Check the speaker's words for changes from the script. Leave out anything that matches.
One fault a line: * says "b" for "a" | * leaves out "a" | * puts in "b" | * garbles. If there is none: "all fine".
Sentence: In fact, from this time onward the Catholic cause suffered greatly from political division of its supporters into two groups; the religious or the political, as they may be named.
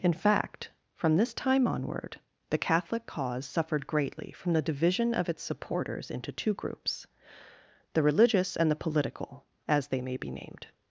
* says "the" for "political"
* says "and" for "or"